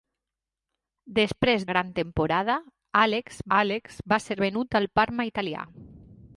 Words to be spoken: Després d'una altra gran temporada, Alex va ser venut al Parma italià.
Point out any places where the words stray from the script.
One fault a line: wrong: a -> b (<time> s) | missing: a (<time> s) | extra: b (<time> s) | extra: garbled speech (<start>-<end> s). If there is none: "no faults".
missing: d'una altra (1.7 s)
extra: Alex (3.6 s)